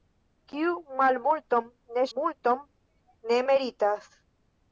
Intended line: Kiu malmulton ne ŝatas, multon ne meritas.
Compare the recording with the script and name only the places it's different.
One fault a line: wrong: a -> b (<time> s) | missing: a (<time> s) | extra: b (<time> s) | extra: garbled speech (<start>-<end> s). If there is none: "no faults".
missing: ŝatas (2.0 s)